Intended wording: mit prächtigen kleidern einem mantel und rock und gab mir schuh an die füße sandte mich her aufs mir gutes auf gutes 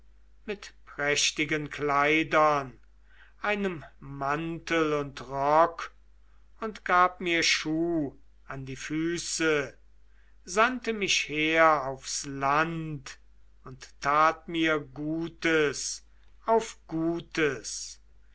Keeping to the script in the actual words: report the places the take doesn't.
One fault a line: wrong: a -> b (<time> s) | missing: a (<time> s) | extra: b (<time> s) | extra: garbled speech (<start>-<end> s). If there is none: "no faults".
extra: land und tat (12.3 s)